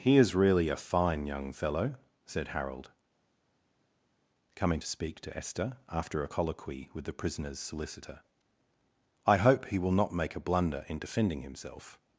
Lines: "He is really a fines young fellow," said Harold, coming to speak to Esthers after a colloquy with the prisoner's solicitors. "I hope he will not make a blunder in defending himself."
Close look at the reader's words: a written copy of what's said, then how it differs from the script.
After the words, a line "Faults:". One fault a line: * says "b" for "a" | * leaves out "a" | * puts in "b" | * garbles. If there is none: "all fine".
"He is really a fine young fellow," said Harold, coming to speak to Esther after a colloquy with the prisoner's solicitor. "I hope he will not make a blunder in defending himself."
Faults:
* says "fine" for "fines"
* says "Esther" for "Esthers"
* says "solicitor" for "solicitors"